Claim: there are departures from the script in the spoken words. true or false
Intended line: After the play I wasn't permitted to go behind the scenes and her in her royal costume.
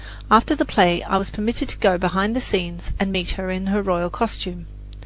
true